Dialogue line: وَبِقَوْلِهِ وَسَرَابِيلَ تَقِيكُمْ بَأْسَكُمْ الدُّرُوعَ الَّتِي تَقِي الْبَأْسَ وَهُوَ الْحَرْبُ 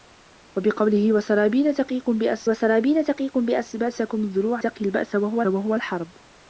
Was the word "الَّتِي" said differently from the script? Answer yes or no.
yes